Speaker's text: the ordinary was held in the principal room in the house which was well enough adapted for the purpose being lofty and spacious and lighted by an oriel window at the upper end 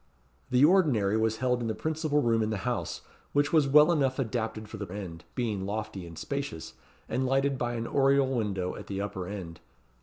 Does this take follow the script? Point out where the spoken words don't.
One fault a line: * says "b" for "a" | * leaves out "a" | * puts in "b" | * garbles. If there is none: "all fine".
* says "end" for "purpose"